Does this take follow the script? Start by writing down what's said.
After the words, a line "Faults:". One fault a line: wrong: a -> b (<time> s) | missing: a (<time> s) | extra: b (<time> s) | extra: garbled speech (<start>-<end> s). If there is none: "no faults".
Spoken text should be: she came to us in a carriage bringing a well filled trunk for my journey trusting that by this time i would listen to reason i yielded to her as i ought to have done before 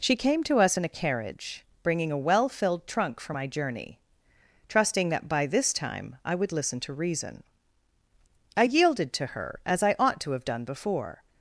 she came to us in a carriage bringing a well filled trunk for my journey trusting that by this time i would listen to reason i yielded to her as i ought to have done before
Faults:
no faults